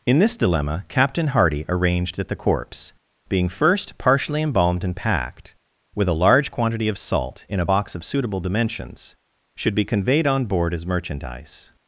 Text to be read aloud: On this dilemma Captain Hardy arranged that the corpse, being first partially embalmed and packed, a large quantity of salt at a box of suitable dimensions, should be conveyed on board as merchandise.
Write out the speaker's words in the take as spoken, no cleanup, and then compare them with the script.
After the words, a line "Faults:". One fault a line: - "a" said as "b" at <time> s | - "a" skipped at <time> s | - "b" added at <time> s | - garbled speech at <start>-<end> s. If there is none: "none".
In this dilemma Captain Hardy arranged that the corpse, being first partially embalmed and packed, with a large quantity of salt in a box of suitable dimensions, should be conveyed on board as merchandise.
Faults:
- "On" said as "In" at 0.0 s
- "with" added at 5.9 s
- "at" said as "in" at 7.5 s